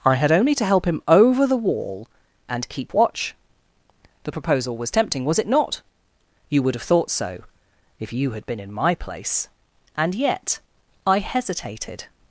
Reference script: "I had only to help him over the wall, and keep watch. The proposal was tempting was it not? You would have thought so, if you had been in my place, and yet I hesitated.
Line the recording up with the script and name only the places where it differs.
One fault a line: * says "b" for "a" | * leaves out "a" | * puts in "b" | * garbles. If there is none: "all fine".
all fine